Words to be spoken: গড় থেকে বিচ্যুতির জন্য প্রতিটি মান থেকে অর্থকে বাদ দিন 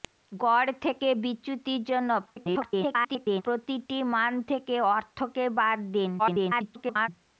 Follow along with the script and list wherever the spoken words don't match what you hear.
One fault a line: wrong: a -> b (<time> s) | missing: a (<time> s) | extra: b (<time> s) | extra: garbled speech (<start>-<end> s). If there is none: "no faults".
extra: garbled speech (2.3-3.4 s)
extra: garbled speech (6.2-7.1 s)